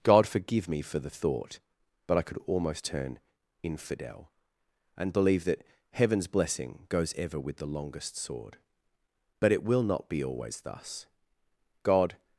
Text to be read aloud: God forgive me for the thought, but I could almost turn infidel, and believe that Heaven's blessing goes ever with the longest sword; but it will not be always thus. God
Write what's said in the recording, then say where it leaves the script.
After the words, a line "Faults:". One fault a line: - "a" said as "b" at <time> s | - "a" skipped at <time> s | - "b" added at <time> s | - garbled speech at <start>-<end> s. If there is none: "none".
God forgive me for the thought, but I could almost turn infidel, and believe that Heaven's blessing goes ever with the longest sword; but it will not be always thus. God
Faults:
none